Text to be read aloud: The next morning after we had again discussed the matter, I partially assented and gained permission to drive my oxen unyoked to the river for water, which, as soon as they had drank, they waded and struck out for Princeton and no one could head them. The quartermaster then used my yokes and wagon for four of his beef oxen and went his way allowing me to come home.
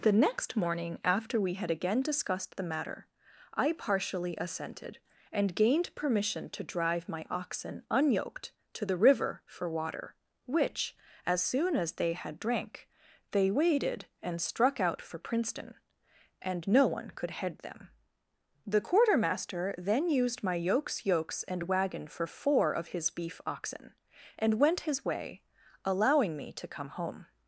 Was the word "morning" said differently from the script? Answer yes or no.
no